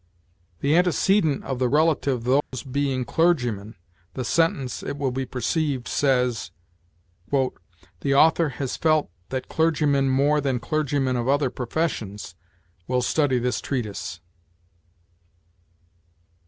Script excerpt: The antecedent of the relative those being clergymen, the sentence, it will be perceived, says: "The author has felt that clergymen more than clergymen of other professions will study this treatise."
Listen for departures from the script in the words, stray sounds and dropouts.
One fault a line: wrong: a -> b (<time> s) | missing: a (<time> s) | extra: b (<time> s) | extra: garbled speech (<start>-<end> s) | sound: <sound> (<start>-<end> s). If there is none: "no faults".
sound: dropout (2.4-2.5 s)